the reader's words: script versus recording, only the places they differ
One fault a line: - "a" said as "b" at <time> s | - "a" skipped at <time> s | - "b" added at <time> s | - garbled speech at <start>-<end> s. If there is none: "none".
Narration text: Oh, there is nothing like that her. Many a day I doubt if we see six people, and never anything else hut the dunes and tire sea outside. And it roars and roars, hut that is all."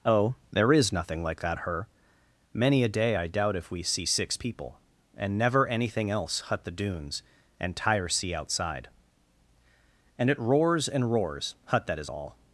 none